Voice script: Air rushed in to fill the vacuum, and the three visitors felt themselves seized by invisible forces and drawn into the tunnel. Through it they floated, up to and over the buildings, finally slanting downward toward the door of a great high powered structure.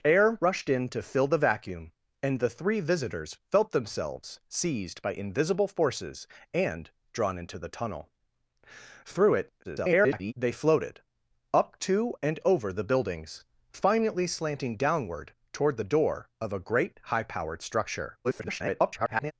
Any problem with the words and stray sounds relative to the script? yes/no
yes